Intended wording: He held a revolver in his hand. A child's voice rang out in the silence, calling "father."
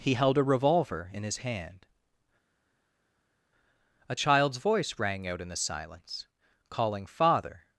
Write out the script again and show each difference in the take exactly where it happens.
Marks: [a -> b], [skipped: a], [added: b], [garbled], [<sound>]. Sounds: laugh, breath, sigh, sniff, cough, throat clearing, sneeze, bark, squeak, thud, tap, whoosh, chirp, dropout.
He held a revolver in his hand. A child's voice rang out in the silence, calling "father."